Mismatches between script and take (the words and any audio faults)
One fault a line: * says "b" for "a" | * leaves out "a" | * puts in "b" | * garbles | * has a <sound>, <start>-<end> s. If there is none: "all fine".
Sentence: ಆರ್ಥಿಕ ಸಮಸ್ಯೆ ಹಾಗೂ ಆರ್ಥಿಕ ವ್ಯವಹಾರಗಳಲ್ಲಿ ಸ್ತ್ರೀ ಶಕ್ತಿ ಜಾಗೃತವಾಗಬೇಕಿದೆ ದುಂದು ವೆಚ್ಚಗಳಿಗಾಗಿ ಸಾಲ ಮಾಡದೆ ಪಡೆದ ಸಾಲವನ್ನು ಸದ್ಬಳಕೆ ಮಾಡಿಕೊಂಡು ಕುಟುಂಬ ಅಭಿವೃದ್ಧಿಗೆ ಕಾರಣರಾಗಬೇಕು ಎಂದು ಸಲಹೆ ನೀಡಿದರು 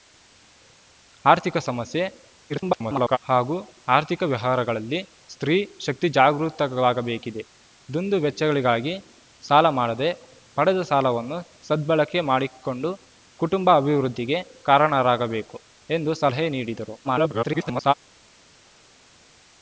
* garbles
* garbles